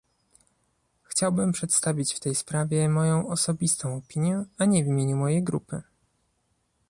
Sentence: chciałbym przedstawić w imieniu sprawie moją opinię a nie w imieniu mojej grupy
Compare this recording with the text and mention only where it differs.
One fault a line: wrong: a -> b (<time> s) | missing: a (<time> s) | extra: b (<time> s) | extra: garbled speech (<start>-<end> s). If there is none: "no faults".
wrong: imieniu -> tej (2.2 s)
extra: osobistą (3.3 s)